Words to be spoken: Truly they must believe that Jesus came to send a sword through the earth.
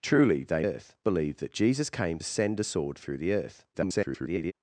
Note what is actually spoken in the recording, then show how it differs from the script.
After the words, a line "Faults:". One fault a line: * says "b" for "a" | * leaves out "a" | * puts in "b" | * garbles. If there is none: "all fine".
Truly they earth believe that Jesus came send a sword through the earth. [garbled]
Faults:
* says "earth" for "must"
* leaves out "to"
* garbles